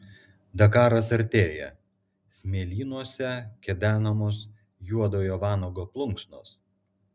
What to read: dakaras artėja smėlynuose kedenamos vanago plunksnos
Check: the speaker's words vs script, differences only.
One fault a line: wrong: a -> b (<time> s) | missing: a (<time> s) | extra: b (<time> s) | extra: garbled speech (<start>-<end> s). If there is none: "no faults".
extra: juodojo (4.9 s)